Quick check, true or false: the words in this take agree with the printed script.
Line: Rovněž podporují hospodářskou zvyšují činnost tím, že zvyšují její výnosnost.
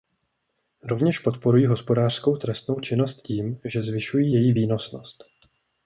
false